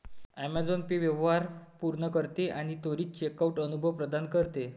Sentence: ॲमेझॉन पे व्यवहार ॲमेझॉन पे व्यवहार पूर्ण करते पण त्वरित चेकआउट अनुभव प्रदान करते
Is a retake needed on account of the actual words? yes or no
yes